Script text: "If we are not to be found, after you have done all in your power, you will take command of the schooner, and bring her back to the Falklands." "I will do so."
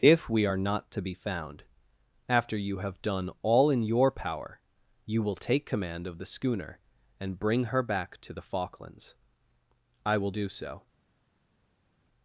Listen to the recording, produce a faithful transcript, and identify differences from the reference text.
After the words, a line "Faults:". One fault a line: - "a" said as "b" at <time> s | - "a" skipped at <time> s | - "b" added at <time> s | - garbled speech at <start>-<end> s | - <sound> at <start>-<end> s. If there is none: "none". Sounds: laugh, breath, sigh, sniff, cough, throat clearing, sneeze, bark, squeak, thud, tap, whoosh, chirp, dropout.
"If we are not to be found, after you have done all in your power, you will take command of the schooner, and bring her back to the Falklands." "I will do so."
Faults:
none